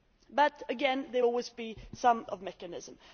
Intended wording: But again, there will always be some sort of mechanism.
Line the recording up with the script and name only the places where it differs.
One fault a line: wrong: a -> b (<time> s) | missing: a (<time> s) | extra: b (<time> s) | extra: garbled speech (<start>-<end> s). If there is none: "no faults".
missing: will (1.2 s)
missing: sort (2.3 s)